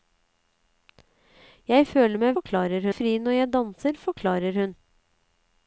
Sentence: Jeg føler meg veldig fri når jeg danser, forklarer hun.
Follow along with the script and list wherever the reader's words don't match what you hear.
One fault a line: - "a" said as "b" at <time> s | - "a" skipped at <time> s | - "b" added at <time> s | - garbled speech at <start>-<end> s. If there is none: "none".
- "veldig" said as "forklarer" at 2.4 s